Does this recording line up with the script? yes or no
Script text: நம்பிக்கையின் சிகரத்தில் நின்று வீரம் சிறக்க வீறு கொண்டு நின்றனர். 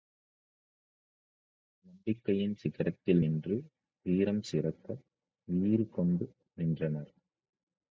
yes